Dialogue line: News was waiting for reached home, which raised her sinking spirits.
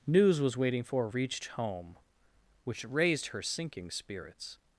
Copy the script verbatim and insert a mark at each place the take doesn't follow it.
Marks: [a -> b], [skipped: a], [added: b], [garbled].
News was waiting for reached home, which raised her sinking spirits.